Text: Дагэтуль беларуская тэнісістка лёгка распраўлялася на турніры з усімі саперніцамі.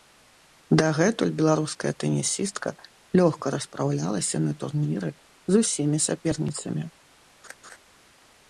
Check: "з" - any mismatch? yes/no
no